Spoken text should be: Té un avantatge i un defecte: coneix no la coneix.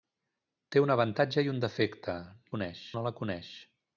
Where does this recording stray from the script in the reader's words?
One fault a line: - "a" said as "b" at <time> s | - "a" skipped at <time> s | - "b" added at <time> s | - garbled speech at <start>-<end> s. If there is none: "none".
none